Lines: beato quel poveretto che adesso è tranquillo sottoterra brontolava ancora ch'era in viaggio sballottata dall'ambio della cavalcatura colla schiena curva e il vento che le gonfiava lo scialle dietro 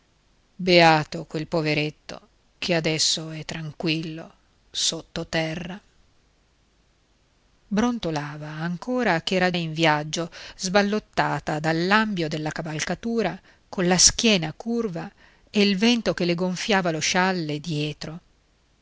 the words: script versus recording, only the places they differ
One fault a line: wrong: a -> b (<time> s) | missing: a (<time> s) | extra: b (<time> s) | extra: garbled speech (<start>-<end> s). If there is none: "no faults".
no faults